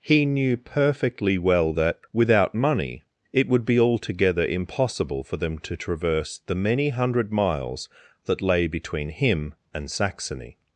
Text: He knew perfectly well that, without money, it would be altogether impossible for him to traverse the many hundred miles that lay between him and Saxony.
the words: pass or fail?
fail